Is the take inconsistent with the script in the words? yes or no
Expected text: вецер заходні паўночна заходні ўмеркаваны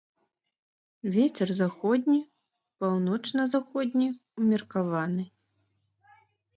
no